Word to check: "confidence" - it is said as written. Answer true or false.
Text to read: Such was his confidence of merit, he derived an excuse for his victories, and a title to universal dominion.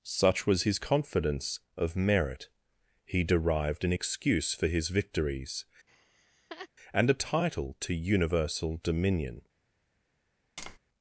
true